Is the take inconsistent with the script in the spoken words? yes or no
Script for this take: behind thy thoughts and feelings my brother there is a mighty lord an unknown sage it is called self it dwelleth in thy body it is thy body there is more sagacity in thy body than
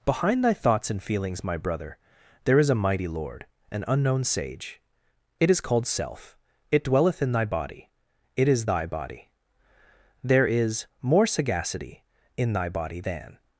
no